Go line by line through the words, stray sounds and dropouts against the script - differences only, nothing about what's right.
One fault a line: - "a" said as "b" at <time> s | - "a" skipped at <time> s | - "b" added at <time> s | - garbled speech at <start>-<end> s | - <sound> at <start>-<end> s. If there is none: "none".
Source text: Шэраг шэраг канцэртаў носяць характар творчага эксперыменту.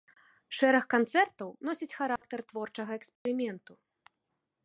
- "шэраг" skipped at 0.8 s
- dropout at 2.2-2.2 s
- dropout at 3.2-3.3 s